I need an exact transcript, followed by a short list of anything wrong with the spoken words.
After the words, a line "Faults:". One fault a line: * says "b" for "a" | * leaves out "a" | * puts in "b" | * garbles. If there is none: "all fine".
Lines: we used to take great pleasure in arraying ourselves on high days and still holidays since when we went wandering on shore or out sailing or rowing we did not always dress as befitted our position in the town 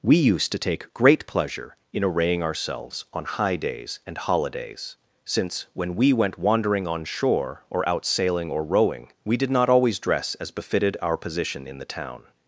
we used to take great pleasure in arraying ourselves on high days and holidays since when we went wandering on shore or out sailing or rowing we did not always dress as befitted our position in the town
Faults:
* leaves out "still"